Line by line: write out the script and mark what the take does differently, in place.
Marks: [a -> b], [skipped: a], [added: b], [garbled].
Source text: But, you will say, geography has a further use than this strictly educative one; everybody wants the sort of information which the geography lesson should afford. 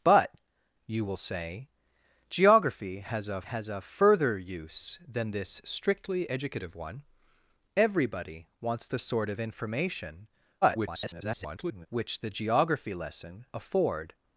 But, you will say, geography has a [added: has a] further use than this strictly educative one; everybody wants the sort of information [garbled] which the geography lesson [skipped: should] afford.